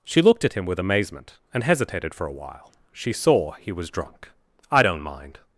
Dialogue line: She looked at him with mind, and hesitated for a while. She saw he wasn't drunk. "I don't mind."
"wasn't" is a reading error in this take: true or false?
true